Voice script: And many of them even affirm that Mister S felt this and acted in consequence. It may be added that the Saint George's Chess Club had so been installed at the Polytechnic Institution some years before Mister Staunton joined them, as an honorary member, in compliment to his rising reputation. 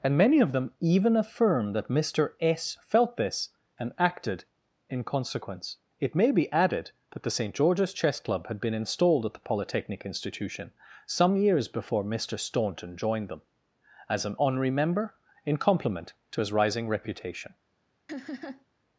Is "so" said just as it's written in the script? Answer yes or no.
no